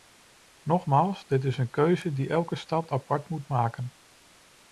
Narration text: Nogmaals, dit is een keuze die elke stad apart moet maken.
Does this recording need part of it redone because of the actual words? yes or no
no